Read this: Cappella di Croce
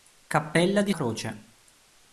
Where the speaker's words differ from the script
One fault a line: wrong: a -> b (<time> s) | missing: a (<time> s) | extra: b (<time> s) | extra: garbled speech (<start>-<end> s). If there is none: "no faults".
no faults